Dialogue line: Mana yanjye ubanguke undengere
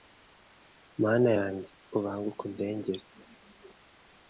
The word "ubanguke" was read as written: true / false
true